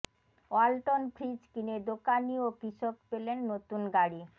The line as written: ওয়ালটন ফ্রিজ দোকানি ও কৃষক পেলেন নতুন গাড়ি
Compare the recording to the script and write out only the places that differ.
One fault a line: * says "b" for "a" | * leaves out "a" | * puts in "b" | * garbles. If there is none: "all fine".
* puts in "কিনে"